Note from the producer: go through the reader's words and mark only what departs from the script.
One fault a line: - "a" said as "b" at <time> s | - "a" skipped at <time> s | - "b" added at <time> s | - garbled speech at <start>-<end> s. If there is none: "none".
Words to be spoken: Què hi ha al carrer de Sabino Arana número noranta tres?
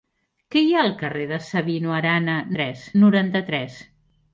- "número" said as "tres" at 2.6 s